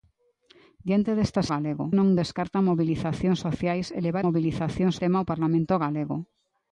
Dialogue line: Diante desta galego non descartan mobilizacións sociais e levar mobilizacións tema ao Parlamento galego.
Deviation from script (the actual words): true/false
false